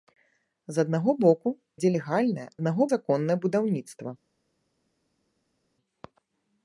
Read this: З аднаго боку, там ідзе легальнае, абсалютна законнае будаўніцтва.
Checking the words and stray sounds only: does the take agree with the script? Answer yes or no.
no